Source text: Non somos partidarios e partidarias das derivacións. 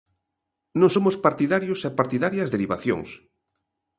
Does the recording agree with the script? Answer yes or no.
no